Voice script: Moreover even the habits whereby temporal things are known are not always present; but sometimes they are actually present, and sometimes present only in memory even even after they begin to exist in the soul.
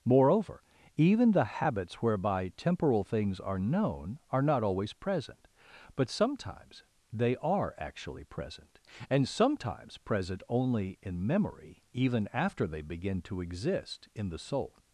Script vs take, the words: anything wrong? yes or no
yes